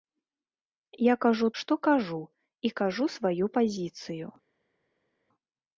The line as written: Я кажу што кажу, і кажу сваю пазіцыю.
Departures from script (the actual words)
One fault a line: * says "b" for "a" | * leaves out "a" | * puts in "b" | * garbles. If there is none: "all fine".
all fine